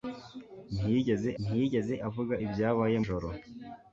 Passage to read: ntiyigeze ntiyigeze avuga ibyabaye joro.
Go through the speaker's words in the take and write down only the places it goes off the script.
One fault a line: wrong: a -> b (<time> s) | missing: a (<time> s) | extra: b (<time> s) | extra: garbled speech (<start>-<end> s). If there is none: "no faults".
no faults